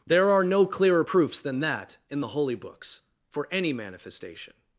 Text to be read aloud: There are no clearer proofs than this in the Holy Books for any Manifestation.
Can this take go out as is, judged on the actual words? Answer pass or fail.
fail